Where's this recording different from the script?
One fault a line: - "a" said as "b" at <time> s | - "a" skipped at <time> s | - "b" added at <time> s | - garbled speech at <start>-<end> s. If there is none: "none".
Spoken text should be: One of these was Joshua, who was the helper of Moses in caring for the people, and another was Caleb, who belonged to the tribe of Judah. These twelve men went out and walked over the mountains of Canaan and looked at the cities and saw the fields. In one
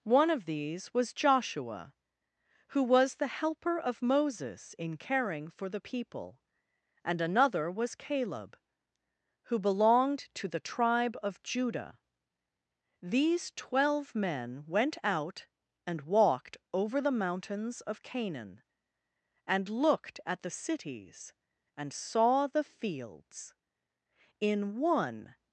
none